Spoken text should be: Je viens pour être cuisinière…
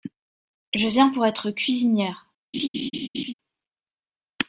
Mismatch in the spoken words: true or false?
false